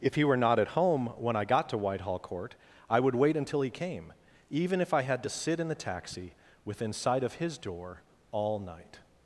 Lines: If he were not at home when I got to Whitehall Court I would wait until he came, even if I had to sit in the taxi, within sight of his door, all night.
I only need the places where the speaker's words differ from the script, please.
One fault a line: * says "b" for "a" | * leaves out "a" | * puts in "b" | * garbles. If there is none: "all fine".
all fine